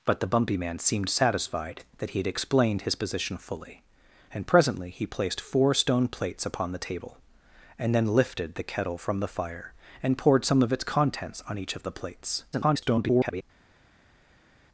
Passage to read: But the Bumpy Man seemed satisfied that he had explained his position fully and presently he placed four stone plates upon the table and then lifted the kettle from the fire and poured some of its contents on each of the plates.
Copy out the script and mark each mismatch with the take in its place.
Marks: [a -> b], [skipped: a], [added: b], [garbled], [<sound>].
But the Bumpy Man seemed satisfied that he had explained his position fully and presently he placed four stone plates upon the table and then lifted the kettle from the fire and poured some of its contents on each of the plates. [garbled]